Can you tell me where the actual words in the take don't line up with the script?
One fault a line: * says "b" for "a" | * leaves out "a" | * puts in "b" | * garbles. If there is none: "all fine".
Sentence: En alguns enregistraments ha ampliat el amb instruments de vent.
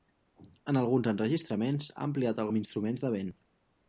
all fine